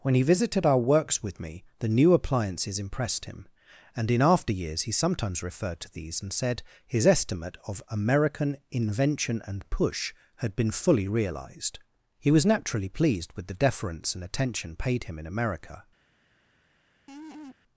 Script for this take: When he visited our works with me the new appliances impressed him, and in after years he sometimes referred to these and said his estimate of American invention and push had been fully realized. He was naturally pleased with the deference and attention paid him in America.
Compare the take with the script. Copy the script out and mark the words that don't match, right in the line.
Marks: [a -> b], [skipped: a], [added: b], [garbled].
When he visited our works with me the new appliances impressed him, and in after years he sometimes referred to these and said his estimate of American invention and push had been fully realized. He was naturally pleased with the deference and attention paid him in America.